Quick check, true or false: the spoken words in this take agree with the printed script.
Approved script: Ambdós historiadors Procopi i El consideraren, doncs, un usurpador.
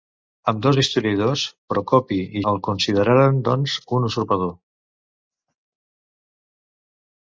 true